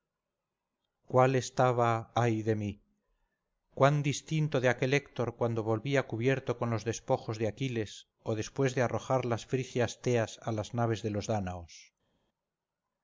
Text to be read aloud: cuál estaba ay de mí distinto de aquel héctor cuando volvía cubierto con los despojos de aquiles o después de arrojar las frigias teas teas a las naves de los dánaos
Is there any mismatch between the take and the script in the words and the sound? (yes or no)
yes